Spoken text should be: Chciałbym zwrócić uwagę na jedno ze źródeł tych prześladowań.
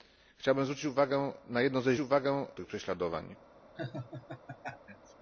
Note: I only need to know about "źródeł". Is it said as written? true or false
false